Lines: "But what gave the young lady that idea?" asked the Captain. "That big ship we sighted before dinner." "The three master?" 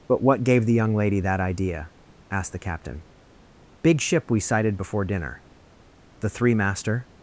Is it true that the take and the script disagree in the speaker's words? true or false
true